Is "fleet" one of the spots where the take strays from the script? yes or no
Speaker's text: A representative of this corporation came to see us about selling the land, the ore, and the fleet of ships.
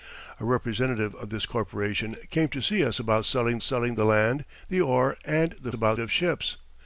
yes